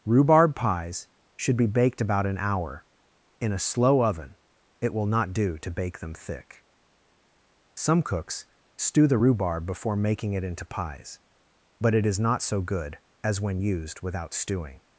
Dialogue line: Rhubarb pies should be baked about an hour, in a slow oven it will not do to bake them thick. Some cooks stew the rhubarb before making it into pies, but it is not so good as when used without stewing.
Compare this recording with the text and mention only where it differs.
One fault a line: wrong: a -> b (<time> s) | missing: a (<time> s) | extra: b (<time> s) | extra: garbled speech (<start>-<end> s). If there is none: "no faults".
no faults